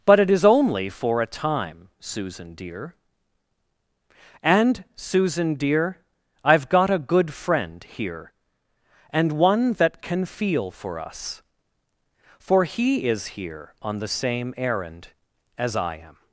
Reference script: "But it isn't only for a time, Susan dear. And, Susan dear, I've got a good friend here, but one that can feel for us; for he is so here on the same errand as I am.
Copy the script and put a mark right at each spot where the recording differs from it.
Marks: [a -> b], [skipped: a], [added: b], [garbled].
"But it [isn't -> is] only for a time, Susan dear. And, Susan dear, I've got a good friend here, [but -> and] one that can feel for us; for he is [skipped: so] here on the same errand as I am.